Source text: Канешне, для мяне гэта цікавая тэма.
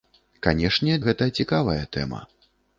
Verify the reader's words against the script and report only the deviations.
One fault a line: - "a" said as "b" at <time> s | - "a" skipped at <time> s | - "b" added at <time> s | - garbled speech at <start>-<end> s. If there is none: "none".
- "для мяне" skipped at 0.9 s